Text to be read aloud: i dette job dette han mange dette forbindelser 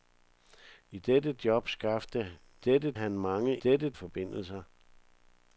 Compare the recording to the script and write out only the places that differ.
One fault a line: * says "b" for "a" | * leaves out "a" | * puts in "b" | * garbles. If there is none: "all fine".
all fine